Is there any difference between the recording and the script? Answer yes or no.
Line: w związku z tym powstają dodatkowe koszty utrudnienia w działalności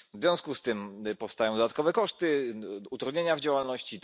no